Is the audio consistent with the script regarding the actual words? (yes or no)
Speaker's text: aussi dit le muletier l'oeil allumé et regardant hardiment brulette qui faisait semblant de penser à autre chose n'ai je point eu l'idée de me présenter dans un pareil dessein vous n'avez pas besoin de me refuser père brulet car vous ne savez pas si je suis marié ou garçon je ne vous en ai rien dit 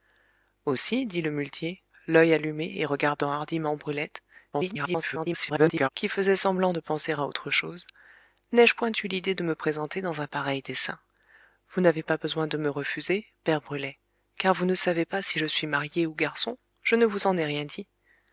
no